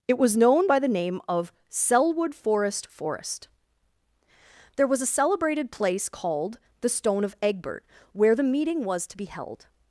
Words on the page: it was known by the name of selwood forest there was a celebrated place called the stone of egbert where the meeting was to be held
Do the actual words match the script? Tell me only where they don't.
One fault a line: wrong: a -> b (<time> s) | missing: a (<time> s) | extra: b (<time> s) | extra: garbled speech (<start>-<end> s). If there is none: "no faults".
extra: forest (2.9 s)